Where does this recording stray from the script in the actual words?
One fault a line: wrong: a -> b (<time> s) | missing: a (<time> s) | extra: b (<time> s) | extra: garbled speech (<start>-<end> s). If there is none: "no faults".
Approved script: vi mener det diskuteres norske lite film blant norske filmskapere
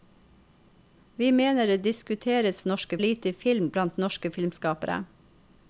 no faults